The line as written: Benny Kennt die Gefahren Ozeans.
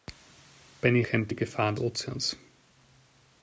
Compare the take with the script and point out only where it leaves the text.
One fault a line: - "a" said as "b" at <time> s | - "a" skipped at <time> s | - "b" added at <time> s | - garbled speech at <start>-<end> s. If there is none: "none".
none